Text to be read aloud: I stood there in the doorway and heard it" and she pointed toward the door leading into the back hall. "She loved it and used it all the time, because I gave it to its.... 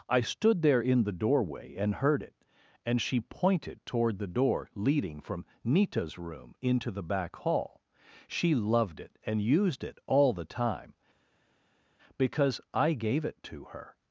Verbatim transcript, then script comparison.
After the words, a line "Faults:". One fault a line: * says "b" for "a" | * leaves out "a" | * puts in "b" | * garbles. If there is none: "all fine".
I stood there in the doorway and heard it" and she pointed toward the door leading from Nita's room into the back hall. "She loved it and used it all the time, because I gave it to her....
Faults:
* puts in "from Nita's room"
* says "her" for "its"